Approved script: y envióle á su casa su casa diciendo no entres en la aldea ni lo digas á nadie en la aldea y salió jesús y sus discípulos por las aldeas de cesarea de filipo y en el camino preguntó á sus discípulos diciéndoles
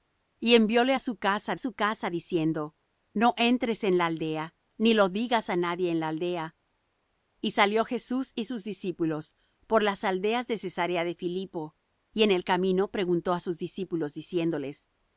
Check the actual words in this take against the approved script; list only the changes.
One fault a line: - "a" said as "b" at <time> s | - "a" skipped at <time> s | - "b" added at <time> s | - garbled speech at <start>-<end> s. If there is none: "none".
none